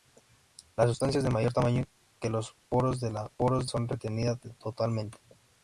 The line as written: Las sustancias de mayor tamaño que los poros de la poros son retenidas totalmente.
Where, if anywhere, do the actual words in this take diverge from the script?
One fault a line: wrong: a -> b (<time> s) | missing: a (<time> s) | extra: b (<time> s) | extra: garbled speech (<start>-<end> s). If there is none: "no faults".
no faults